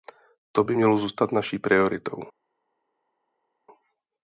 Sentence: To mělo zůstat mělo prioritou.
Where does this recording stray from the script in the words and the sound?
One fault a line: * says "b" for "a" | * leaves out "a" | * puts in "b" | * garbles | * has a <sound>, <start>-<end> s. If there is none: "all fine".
* puts in "by"
* says "naší" for "mělo"